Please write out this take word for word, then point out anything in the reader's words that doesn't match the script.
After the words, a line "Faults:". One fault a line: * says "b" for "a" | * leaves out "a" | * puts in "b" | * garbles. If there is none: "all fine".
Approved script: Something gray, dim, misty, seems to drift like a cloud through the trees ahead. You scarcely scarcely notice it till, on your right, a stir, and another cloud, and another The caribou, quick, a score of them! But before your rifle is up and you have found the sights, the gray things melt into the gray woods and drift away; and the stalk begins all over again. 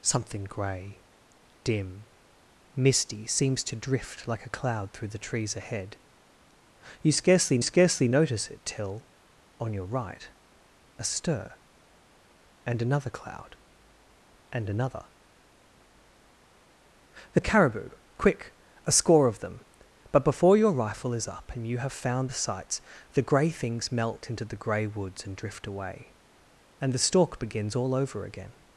Something gray, dim, misty, seems to drift like a cloud through the trees ahead. You scarcely scarcely notice it till, on your right, a stir, and another cloud, and another The caribou, quick, a score of them! But before your rifle is up and you have found the sights, the gray things melt into the gray woods and drift away; and the stalk begins all over again.
Faults:
all fine